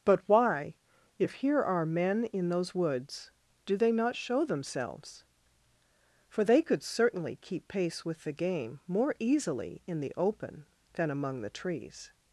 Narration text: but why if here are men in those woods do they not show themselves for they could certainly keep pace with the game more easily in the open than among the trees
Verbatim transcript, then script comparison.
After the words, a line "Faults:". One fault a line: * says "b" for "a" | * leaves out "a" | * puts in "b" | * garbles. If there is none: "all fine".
but why if here are men in those woods do they not show themselves for they could certainly keep pace with the game more easily in the open than among the trees
Faults:
all fine